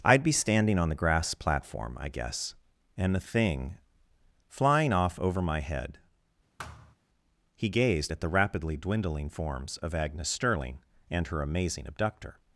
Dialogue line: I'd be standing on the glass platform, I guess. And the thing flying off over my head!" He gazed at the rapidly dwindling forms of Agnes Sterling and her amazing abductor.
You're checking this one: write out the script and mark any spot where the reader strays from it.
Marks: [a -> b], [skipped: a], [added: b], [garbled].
I'd be standing on the [glass -> grass] platform, I guess. And the thing flying off over my head!" He gazed at the rapidly dwindling forms of Agnes Sterling and her amazing abductor.